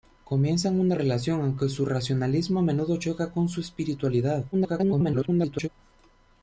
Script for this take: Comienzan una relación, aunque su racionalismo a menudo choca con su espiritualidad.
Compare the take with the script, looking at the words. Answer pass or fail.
fail